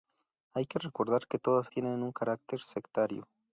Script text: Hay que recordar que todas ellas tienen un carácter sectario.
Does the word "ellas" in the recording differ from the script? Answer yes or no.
yes